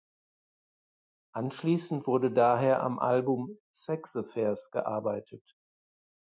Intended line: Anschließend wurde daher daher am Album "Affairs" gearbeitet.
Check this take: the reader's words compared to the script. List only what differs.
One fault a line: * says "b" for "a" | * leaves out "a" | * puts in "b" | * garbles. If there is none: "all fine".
* leaves out "daher"
* puts in "Sex"